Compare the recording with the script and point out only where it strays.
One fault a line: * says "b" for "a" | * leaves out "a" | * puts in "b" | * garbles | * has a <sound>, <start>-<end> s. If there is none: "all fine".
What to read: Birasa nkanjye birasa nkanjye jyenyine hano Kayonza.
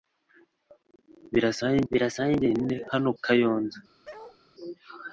* has a bark, 4.0-4.4 s